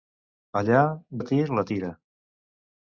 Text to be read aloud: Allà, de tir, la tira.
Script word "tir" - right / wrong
right